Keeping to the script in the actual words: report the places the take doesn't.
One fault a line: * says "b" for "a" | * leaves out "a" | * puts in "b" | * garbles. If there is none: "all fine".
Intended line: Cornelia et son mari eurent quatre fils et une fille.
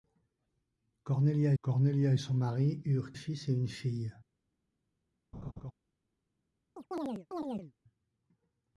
* puts in "cornelia"
* leaves out "quatre"